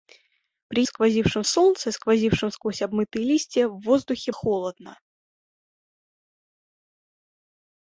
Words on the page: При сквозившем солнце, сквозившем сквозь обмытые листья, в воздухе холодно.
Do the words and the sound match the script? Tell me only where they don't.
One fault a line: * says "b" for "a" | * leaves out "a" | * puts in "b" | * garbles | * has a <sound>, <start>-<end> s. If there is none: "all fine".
all fine